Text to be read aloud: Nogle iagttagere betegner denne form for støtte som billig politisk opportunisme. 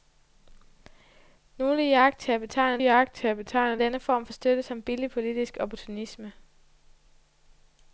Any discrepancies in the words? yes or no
yes